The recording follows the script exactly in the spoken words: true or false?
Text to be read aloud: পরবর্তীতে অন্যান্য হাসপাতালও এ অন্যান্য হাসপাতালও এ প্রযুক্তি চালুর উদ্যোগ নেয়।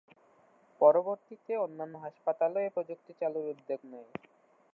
false